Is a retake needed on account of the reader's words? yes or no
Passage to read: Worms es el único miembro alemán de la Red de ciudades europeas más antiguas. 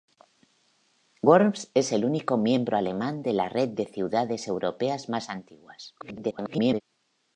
yes